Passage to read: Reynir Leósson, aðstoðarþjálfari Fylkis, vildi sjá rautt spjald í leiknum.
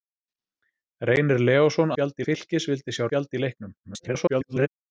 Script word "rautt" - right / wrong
wrong